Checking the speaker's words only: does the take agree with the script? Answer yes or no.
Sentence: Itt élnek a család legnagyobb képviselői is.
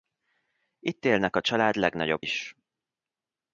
no